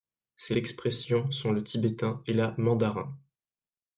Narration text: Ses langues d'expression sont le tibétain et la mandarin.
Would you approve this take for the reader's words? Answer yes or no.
no